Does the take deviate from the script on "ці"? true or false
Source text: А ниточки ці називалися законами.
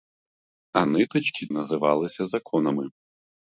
true